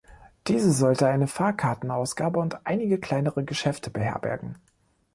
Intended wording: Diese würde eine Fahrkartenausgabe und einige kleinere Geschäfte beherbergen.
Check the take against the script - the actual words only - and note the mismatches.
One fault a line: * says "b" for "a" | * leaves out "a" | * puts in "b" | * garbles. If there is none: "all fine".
* says "sollte" for "würde"